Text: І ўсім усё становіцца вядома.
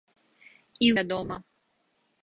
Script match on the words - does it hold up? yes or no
no